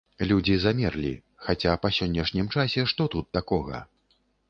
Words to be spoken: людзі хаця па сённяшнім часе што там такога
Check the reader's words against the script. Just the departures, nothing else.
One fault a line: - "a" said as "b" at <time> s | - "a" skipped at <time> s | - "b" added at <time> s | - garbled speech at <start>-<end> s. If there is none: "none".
- "замерлі" added at 0.6 s
- "там" said as "тут" at 3.2 s